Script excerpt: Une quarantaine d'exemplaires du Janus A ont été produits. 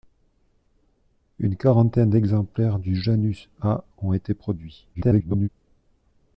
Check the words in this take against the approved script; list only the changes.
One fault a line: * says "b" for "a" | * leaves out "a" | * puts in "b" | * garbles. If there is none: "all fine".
* garbles